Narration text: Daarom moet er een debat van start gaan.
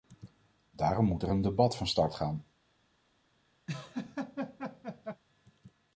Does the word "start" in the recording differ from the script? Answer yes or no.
no